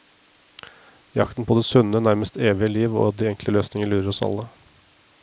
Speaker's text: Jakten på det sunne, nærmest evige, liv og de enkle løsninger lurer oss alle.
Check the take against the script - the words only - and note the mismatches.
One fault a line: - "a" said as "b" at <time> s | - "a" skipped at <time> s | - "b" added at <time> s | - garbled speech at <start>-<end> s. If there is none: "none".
none